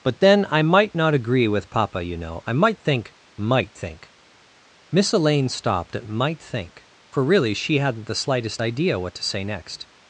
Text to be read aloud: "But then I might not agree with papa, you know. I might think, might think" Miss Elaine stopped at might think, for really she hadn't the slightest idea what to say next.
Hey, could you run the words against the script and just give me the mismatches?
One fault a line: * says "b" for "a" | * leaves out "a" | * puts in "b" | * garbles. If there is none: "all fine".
all fine